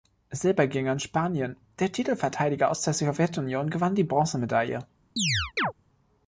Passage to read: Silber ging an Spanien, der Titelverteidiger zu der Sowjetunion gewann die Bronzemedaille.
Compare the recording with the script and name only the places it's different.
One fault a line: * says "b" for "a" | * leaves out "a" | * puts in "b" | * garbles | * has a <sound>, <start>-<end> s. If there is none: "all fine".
* says "aus" for "zu"
* has a chirp, 5.2-5.7 s